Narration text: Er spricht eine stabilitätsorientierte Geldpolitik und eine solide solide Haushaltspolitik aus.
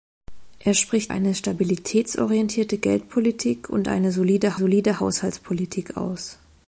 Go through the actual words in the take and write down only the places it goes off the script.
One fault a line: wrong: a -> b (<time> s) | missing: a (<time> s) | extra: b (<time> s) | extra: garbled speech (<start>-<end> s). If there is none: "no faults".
no faults